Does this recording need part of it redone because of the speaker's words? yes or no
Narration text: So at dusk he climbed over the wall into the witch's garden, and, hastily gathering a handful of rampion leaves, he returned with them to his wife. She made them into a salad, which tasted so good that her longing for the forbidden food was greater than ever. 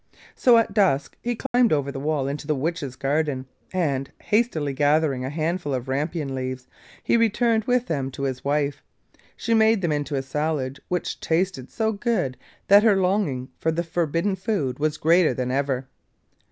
no